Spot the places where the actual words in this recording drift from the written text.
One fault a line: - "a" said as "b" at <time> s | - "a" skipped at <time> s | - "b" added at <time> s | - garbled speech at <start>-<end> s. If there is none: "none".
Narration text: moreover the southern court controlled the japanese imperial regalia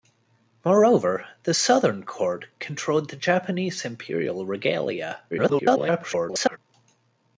- garbled speech at 5.3-6.6 s